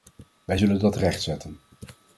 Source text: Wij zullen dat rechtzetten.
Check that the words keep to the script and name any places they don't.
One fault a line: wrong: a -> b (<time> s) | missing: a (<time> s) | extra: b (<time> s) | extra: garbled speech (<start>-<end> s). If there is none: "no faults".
no faults